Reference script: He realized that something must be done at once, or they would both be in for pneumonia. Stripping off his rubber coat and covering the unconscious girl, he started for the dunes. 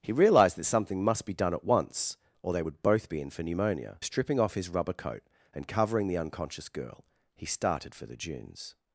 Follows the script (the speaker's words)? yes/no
yes